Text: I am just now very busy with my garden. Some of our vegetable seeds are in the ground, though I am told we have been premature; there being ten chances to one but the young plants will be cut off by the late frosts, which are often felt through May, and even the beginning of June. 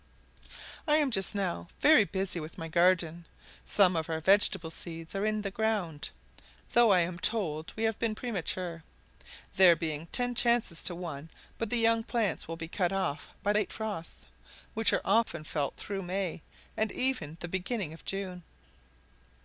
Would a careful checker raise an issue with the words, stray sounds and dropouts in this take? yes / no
yes